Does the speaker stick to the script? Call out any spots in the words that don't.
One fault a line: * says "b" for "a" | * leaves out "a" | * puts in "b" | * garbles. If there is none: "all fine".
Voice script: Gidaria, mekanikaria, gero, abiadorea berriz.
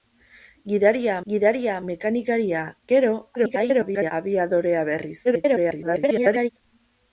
* puts in "gidaria"
* garbles
* garbles